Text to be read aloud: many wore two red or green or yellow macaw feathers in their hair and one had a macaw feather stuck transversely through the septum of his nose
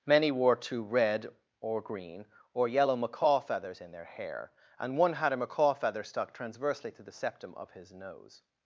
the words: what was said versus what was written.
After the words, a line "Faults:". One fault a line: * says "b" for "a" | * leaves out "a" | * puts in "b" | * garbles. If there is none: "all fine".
many wore two red or green or yellow macaw feathers in their hair and one had a macaw feather stuck transversely to the septum of his nose
Faults:
* says "to" for "through"